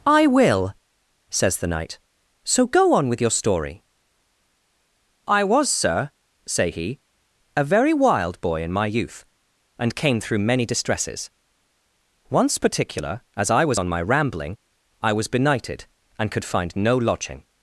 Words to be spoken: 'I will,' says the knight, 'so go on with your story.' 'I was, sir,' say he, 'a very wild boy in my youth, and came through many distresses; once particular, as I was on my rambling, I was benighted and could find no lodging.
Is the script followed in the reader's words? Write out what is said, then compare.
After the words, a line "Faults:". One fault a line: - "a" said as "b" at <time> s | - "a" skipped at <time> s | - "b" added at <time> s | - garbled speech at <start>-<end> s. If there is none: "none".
'I will,' says the knight, 'so go on with your story.' 'I was, sir,' say he, 'a very wild boy in my youth, and came through many distresses; once particular, as I was on my rambling, I was benighted and could find no lodging.
Faults:
none